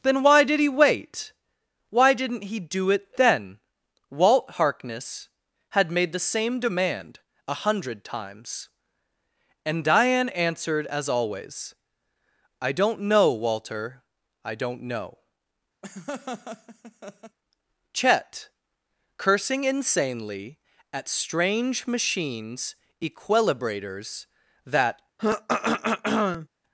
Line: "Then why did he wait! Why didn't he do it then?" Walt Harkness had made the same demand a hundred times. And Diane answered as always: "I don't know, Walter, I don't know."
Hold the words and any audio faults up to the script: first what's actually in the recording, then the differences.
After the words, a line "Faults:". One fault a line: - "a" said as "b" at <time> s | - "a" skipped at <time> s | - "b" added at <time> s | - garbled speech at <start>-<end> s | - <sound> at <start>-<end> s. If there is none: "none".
"Then why did he wait! Why didn't he do it then?" Walt Harkness had made the same demand a hundred times. And Diane answered as always: "I don't know, Walter, I don't know." Chet, cursing insanely at strange machines equilibrators that
Faults:
- laugh at 15.8-17.4 s
- "Chet cursing insanely at strange machines equilibrators that" added at 17.9 s
- throat clearing at 25.2-26.5 s